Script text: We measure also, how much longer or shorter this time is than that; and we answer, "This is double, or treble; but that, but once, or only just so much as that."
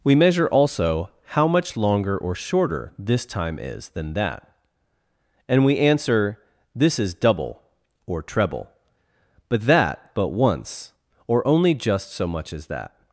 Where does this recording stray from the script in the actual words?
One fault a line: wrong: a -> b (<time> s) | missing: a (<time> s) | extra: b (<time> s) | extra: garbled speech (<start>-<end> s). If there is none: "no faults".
no faults